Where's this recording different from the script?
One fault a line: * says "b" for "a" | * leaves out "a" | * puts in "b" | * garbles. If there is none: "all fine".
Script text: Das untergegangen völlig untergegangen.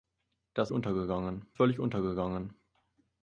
all fine